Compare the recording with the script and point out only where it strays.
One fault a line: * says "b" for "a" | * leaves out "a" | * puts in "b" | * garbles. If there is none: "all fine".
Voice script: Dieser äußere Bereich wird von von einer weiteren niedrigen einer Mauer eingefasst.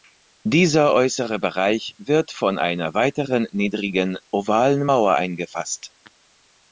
* leaves out "von"
* says "ovalen" for "einer"